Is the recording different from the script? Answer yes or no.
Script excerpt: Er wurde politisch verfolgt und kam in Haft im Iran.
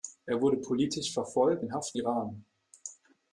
yes